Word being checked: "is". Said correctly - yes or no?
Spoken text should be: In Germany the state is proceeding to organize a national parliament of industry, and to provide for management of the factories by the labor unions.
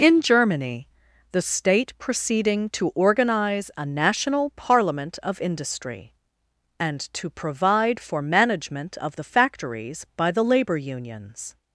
no